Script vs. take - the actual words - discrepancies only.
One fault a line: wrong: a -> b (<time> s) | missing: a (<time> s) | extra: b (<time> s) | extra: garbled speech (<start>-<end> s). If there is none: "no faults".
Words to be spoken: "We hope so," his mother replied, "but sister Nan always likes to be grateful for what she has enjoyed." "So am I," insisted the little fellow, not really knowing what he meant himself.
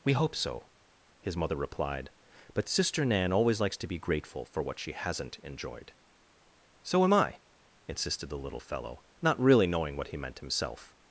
wrong: has -> hasn't (4.9 s)